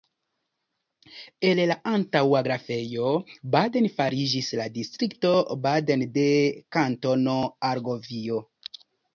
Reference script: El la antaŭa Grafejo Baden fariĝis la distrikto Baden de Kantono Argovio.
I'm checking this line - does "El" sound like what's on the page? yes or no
yes